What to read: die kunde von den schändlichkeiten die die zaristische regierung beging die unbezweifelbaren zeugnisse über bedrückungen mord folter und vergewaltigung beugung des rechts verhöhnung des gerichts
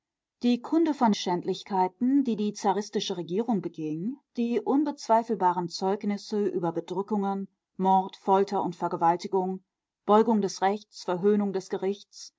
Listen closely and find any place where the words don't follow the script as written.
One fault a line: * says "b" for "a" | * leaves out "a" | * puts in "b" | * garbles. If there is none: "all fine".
* leaves out "den"